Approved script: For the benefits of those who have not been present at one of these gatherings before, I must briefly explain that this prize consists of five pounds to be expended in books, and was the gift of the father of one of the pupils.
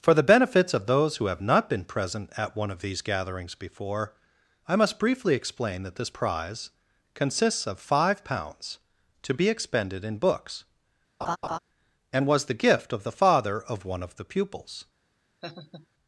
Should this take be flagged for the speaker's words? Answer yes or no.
no